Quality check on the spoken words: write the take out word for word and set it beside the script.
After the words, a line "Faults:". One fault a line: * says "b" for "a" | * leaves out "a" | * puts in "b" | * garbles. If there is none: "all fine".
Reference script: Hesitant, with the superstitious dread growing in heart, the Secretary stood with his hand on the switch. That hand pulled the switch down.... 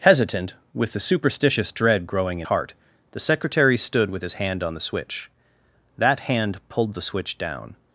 Hesitant, with the superstitious dread growing in heart, the Secretary stood with his hand on the switch. That hand pulled the switch down....
Faults:
all fine